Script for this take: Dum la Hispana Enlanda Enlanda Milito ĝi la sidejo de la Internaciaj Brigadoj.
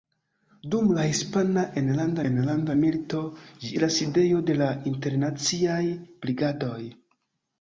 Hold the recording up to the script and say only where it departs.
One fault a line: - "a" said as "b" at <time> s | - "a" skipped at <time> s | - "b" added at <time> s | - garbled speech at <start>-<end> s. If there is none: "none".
none